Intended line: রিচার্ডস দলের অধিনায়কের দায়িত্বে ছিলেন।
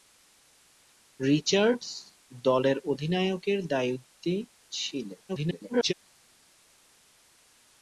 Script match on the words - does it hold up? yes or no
no